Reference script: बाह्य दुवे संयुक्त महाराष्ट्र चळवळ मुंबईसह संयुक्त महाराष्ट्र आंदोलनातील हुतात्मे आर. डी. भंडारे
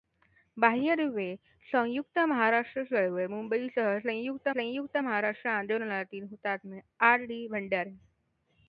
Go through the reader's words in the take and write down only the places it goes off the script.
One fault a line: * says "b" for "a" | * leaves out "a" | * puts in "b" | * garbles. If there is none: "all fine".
* puts in "संयुक्त"